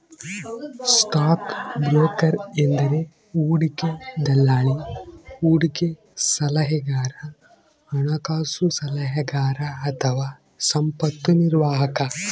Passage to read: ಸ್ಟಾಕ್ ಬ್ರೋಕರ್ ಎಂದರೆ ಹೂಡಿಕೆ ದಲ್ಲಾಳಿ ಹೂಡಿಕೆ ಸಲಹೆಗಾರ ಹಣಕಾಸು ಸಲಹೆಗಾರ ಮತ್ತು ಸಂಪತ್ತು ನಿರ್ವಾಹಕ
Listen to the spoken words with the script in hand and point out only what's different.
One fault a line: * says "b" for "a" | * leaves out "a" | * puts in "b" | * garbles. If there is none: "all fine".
* says "ಅಥವಾ" for "ಮತ್ತು"